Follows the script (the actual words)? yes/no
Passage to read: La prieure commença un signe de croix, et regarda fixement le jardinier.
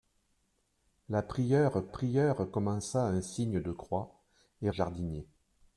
no